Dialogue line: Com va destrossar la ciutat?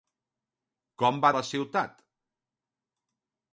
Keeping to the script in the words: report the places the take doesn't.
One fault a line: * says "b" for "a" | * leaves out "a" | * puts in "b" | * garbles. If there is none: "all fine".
* leaves out "destrossar"